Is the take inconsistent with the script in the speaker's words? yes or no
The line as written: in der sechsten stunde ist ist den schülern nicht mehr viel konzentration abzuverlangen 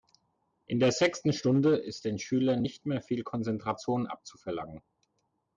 yes